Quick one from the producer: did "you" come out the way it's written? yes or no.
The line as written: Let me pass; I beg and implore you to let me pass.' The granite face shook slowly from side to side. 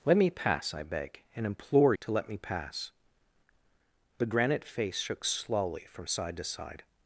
no